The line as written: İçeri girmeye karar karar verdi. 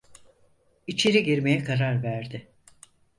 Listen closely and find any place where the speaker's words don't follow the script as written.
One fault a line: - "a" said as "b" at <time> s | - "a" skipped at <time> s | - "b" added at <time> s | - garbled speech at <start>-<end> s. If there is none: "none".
- "karar" skipped at 2.0 s